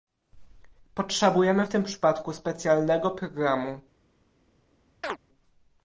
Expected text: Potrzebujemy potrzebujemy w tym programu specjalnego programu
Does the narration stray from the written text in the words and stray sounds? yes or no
yes